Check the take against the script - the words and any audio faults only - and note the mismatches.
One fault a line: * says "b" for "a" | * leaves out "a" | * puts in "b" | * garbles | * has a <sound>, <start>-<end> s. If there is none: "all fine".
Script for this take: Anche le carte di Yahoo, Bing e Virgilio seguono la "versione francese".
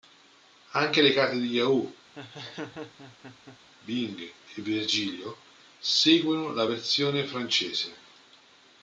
* has a laugh, 2.2-3.6 s